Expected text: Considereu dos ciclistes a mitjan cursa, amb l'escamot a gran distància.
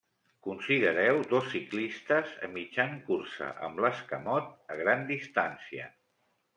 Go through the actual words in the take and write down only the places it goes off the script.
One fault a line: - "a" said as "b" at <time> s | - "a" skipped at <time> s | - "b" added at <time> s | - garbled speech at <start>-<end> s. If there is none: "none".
none